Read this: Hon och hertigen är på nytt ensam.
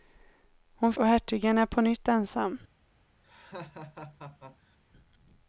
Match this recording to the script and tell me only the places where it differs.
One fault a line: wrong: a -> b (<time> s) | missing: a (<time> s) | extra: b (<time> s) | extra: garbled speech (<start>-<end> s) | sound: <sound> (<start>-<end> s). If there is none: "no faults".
sound: laugh (3.2-4.8 s)